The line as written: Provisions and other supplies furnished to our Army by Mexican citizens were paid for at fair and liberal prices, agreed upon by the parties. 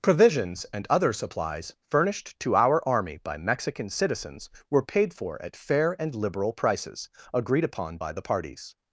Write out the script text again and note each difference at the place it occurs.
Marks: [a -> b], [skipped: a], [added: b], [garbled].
Provisions and other supplies furnished to our Army by Mexican citizens were paid for at fair and liberal prices, agreed upon by the parties.